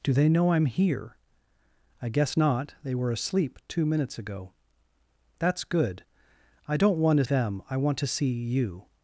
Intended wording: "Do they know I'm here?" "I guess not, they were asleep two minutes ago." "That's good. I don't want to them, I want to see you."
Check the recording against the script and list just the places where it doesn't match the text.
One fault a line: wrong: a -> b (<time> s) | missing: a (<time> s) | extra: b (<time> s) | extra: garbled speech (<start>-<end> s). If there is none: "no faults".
no faults